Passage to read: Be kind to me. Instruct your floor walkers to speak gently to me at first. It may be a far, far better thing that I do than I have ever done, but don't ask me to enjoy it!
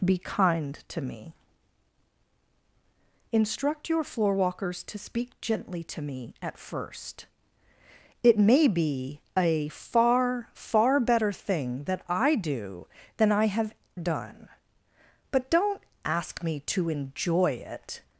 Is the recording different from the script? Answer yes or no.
yes